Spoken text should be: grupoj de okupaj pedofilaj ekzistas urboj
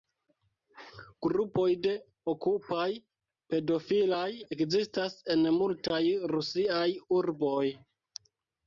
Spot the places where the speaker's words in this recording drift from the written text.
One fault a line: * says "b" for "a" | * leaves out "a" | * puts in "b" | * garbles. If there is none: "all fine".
* puts in "en multaj rusiaj"